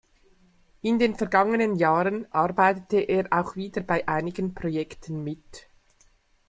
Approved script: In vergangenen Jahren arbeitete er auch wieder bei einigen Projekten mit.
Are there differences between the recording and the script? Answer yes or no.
yes